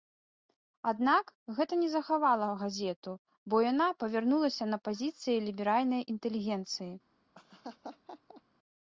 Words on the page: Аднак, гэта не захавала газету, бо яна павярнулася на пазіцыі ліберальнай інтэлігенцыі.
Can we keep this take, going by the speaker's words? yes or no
yes